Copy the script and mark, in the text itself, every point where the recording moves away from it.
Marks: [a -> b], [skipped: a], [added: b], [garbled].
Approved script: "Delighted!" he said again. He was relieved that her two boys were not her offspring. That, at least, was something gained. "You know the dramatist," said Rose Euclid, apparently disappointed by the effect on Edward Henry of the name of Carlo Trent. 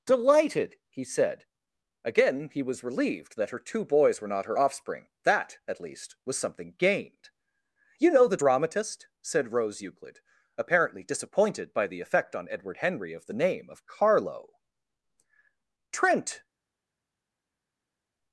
"Delighted!" he said again. He was relieved that her two boys were not her offspring. That, at least, was something gained. "You know the dramatist," said Rose Euclid, apparently disappointed by the effect on Edward Henry of the name of Carlo Trent.